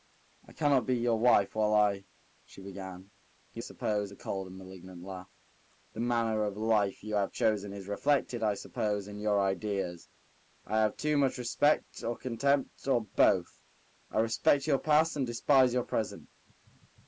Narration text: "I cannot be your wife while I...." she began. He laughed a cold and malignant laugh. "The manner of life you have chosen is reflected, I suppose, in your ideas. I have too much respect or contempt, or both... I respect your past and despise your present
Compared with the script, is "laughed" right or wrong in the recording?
wrong